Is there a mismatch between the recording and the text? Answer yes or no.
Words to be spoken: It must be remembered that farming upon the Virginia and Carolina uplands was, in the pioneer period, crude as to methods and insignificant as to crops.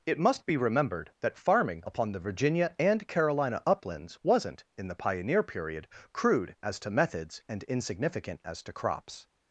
yes